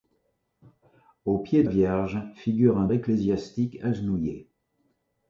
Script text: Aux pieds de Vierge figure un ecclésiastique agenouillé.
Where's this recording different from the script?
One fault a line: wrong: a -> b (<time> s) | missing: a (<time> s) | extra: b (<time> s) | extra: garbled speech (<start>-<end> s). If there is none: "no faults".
no faults